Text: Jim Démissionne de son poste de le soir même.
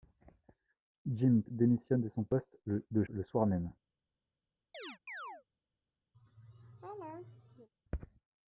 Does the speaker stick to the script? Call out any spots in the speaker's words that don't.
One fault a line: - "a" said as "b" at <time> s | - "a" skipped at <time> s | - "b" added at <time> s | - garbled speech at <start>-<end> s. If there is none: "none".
none